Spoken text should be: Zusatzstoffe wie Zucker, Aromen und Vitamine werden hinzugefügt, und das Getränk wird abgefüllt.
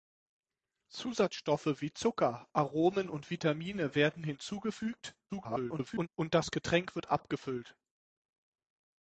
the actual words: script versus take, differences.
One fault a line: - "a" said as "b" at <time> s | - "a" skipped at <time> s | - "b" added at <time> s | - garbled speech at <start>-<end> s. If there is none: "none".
- garbled speech at 5.3-6.1 s